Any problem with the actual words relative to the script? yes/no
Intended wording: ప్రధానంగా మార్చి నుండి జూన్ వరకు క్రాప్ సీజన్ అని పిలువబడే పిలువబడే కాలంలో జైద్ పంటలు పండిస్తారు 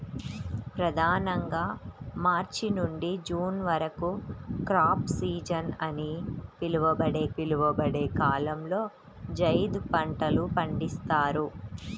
no